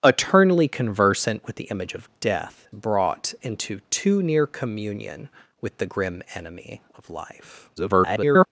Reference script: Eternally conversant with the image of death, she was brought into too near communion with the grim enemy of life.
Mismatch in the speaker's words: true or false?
true